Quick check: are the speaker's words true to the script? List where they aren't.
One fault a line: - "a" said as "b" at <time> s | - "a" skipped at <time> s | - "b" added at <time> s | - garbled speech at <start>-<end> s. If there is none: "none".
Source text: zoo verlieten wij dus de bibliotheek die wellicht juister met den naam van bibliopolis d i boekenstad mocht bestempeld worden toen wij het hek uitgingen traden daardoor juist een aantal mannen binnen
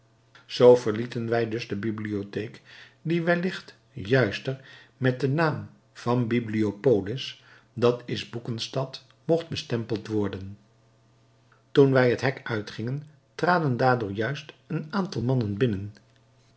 none